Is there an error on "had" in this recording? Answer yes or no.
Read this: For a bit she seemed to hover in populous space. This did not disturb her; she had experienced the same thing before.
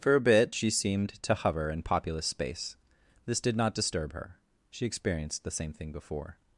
yes